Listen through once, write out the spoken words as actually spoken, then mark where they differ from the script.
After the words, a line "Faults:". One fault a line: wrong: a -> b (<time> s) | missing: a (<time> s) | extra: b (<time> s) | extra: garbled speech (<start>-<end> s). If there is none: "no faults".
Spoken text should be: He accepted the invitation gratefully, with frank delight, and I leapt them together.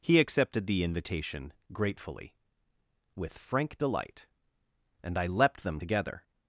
He accepted the invitation gratefully, with frank delight, and I leapt them together.
Faults:
no faults